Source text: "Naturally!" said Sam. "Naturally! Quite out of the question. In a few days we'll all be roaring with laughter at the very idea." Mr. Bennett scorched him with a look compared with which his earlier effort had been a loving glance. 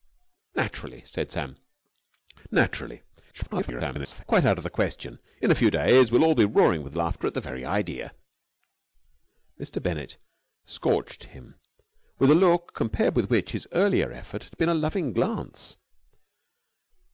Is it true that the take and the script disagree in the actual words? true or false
true